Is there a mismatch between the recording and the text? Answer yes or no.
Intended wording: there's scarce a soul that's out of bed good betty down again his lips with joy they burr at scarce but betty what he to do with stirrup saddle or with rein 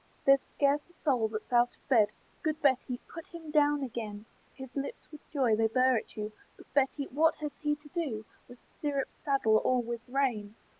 yes